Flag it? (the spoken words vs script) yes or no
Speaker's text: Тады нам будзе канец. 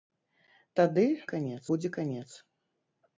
yes